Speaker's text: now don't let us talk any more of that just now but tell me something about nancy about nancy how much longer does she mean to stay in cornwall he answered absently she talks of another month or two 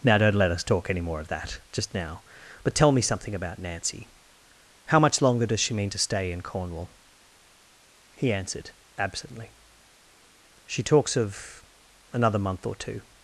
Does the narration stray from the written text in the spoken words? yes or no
yes